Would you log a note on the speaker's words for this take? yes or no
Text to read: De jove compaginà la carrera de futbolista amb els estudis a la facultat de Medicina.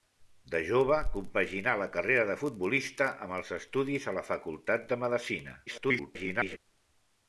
yes